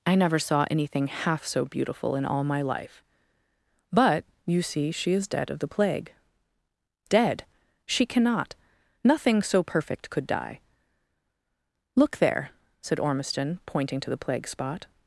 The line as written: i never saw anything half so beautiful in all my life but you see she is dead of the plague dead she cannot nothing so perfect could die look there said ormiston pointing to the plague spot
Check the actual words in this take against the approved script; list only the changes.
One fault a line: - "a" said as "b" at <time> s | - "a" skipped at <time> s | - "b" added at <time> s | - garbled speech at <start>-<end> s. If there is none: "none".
none